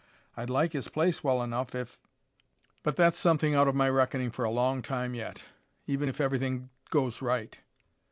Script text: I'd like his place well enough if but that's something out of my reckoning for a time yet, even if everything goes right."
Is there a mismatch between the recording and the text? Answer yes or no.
yes